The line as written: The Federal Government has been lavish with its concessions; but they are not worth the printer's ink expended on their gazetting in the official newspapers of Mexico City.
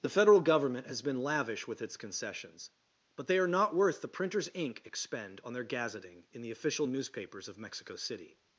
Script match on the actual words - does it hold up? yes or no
no